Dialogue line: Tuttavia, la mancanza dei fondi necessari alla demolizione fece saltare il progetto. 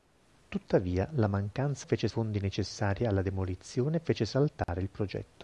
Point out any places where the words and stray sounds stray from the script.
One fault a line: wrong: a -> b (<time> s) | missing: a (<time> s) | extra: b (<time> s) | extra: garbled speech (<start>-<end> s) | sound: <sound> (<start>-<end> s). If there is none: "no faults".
wrong: dei -> fece (1.8 s)
sound: dropout (4.6-4.7 s)